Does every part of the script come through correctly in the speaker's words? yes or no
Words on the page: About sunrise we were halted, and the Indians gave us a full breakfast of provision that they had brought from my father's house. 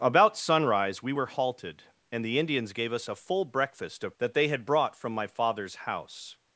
no